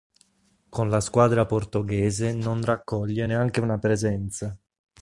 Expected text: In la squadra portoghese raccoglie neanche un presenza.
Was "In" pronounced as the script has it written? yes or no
no